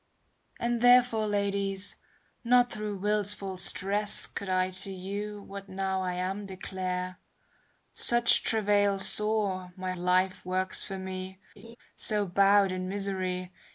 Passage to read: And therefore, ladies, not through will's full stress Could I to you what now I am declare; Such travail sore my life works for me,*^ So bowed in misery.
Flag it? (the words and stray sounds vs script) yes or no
yes